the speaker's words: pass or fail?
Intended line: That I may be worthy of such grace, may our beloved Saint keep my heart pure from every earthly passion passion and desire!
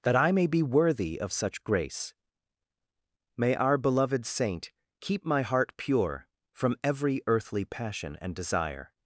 fail